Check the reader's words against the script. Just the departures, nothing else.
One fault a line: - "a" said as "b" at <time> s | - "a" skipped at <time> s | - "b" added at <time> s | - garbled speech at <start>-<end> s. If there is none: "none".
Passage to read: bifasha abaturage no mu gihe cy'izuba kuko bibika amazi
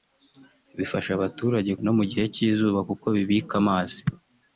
none